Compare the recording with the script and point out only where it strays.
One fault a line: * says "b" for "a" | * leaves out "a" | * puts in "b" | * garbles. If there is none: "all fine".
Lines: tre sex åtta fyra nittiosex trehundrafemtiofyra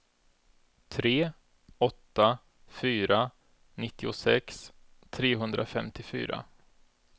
* leaves out "sex"